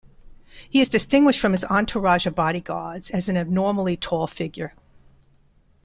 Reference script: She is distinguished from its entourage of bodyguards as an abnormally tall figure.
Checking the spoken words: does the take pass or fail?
fail